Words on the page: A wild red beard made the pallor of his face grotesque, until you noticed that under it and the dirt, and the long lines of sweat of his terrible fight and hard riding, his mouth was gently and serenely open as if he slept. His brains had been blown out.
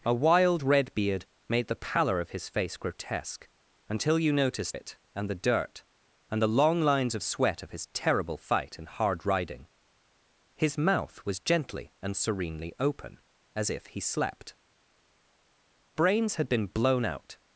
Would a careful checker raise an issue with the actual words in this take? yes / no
yes